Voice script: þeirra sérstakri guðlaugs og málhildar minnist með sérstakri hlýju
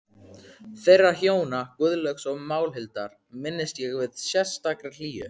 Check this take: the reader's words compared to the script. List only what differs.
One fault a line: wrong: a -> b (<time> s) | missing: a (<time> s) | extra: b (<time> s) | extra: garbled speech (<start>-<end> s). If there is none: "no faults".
wrong: sérstakri -> hjóna (1.2 s)
extra: ég (3.9 s)